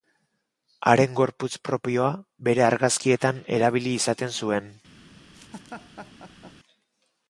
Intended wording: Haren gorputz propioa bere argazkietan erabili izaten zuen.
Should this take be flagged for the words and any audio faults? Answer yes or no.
yes